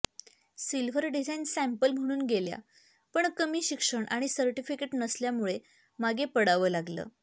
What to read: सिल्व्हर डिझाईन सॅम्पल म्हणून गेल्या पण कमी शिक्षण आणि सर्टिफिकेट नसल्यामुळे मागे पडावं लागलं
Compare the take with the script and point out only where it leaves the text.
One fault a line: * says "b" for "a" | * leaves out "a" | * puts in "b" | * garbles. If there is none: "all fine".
all fine